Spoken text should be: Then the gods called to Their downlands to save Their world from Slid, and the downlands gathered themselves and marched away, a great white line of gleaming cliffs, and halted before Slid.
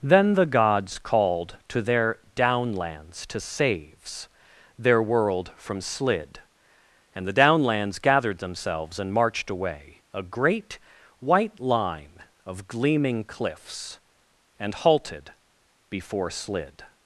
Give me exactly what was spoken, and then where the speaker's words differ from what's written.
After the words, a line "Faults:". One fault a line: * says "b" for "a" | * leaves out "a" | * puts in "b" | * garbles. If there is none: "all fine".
Then the gods called to Their downlands to saves Their world from Slid, and the downlands gathered themselves and marched away, a great white line of gleaming cliffs, and halted before Slid.
Faults:
* says "saves" for "save"